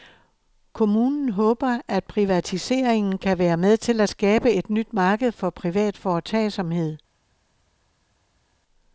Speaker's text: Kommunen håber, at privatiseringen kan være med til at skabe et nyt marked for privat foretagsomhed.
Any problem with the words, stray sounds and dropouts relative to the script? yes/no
no